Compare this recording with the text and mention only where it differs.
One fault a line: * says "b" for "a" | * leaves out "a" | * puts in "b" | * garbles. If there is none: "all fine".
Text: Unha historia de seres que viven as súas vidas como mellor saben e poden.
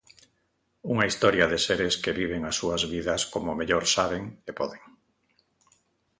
all fine